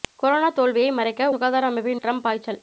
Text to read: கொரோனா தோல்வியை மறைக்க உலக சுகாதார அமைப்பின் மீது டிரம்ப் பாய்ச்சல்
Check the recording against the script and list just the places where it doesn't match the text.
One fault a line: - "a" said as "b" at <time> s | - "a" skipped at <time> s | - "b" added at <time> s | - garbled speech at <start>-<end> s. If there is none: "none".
- "உலக" skipped at 1.3 s
- "மீது" skipped at 2.0 s